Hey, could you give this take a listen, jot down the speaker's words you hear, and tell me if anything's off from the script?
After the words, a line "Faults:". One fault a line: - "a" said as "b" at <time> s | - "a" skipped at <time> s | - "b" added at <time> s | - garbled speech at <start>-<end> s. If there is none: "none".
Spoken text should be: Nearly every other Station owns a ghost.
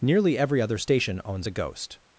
Nearly every other Station owns a ghost.
Faults:
none